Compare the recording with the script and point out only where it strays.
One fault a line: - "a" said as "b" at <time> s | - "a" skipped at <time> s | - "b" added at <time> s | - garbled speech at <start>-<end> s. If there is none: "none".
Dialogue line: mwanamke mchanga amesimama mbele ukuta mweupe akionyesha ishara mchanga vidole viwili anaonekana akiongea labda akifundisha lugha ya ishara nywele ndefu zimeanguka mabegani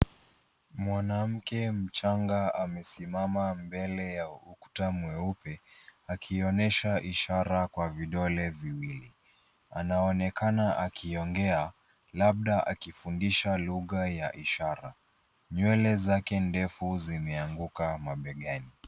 - "ya" added at 4.1 s
- "mchanga" said as "kwa" at 7.6 s
- "zake" added at 15.9 s